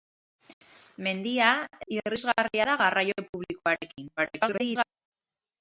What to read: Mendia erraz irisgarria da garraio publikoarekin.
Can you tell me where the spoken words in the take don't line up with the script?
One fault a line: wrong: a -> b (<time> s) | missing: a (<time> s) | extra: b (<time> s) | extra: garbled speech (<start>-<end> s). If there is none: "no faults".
missing: erraz (1.5 s)
extra: garbled speech (4.2-4.8 s)